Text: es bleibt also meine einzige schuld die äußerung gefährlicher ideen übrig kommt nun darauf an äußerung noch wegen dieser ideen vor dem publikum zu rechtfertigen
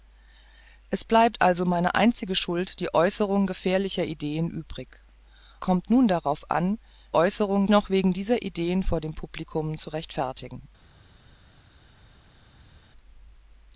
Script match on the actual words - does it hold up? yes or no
yes